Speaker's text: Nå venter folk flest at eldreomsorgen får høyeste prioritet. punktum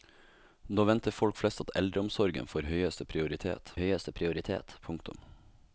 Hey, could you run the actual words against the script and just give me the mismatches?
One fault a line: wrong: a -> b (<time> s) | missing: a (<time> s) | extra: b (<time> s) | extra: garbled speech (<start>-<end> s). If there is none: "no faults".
extra: høyeste prioritet (3.8 s)